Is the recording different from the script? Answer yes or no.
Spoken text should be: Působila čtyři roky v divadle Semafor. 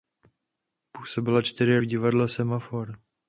yes